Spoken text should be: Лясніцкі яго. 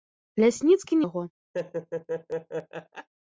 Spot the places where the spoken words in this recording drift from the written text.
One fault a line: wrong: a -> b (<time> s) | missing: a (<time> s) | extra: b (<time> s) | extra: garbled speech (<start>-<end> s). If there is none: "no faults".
no faults